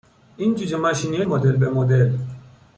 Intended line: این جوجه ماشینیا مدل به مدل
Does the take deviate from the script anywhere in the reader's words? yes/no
no